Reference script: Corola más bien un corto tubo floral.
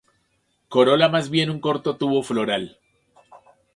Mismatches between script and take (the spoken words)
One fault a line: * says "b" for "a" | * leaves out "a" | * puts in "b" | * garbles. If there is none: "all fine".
all fine